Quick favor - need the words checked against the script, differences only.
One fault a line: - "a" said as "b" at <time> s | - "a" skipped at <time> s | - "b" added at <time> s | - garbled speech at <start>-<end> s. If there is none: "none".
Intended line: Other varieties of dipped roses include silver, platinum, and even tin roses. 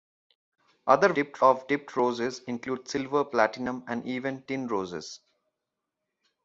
- "varieties" said as "dipped" at 1.1 s